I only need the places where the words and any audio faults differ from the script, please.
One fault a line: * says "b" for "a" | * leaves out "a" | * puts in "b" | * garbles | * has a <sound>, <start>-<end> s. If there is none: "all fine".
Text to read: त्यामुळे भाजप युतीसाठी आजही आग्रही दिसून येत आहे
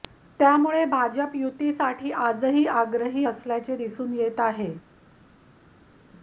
* puts in "असल्याचे"